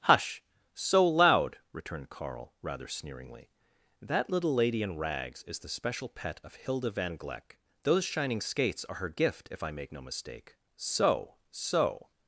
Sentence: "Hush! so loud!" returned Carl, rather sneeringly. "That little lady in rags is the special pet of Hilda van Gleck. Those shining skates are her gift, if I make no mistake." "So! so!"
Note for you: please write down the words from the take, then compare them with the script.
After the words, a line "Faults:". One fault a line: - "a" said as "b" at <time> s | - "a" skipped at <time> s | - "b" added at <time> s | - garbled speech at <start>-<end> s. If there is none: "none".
"Hush! so loud!" returned Carl, rather sneeringly. "That little lady in rags is the special pet of Hilda van Gleck. Those shining skates are her gift, if I make no mistake." "So! so!"
Faults:
none